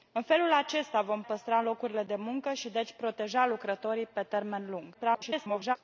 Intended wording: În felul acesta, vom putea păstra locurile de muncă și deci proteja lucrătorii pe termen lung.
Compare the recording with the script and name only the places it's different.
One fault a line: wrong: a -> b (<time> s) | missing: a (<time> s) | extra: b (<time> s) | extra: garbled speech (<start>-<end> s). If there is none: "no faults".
missing: putea (1.2 s)
extra: garbled speech (4.9-5.8 s)